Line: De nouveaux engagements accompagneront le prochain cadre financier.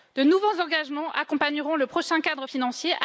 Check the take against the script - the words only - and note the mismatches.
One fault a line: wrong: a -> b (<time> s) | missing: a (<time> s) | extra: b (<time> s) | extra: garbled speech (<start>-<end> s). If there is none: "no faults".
no faults